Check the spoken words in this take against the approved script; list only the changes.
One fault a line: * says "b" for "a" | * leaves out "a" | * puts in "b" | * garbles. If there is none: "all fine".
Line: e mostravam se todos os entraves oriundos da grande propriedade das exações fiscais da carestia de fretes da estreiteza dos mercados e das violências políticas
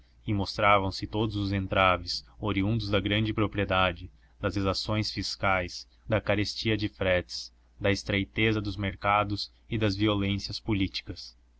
all fine